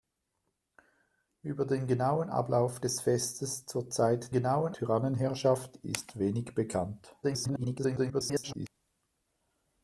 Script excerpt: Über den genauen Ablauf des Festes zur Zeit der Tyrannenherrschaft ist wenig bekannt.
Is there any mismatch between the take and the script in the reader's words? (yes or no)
yes